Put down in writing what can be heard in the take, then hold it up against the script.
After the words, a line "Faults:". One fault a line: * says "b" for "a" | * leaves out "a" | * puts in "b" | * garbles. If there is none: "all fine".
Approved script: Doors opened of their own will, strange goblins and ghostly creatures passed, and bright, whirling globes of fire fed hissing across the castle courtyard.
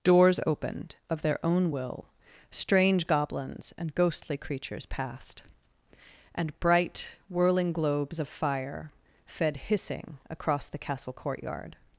Doors opened of their own will, strange goblins and ghostly creatures passed, and bright, whirling globes of fire fed hissing across the castle courtyard.
Faults:
all fine